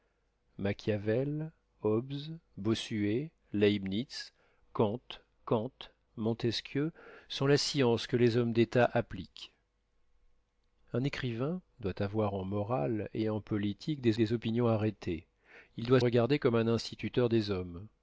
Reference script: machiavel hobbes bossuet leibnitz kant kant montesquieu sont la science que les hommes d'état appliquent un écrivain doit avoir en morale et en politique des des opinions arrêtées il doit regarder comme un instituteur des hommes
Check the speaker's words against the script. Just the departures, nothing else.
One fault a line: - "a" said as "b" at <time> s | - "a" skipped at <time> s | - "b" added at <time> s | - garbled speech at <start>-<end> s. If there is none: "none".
none